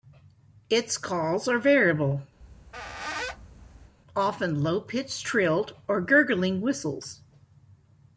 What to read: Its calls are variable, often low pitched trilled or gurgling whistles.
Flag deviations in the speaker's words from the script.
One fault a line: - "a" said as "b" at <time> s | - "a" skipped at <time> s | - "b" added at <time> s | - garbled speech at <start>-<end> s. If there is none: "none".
none